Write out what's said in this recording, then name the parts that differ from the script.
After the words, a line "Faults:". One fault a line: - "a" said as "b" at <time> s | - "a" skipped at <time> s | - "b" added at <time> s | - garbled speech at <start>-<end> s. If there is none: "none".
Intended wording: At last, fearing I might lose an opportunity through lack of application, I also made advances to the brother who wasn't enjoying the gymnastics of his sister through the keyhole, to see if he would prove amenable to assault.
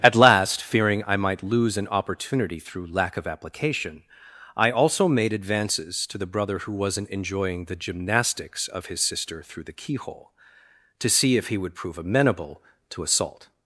At last, fearing I might lose an opportunity through lack of application, I also made advances to the brother who wasn't enjoying the gymnastics of his sister through the keyhole, to see if he would prove amenable to assault.
Faults:
none